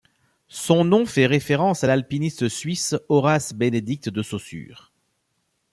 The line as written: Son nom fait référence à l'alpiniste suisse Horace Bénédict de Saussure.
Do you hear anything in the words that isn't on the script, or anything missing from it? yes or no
no